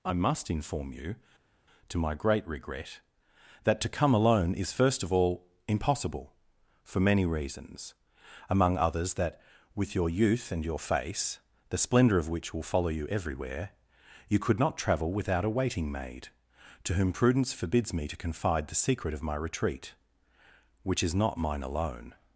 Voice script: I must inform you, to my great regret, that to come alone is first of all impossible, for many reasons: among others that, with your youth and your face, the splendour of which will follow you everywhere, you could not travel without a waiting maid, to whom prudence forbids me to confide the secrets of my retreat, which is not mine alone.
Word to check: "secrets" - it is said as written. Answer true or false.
false